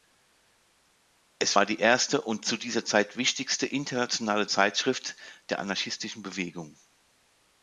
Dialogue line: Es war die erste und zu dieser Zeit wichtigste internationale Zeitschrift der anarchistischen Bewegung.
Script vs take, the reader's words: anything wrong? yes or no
no